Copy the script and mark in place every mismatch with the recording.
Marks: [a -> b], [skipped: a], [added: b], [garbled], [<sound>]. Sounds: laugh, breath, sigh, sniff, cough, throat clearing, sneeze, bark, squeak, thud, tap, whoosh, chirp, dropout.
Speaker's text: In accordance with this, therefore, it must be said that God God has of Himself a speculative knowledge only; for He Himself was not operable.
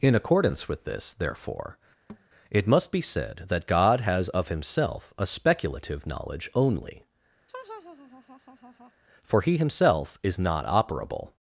In accordance with this, therefore, [thud] it must be said that God [skipped: God] has of Himself a speculative knowledge only; [laugh] for He Himself [was -> is] not operable.